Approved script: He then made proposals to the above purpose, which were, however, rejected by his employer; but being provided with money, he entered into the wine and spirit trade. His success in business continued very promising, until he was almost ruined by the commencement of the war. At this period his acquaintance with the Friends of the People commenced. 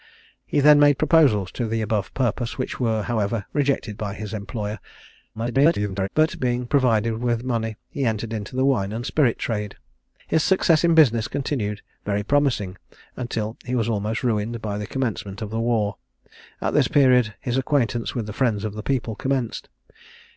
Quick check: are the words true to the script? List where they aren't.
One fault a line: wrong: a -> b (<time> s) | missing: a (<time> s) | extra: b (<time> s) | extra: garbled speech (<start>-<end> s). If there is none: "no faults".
extra: garbled speech (5.3-6.1 s)